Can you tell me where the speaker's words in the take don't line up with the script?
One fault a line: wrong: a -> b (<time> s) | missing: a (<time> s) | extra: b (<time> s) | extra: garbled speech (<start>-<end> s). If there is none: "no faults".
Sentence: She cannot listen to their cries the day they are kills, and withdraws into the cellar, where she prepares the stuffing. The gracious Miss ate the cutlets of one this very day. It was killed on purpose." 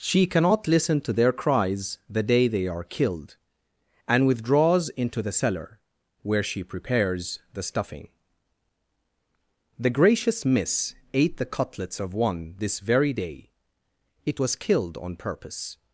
wrong: kills -> killed (2.8 s)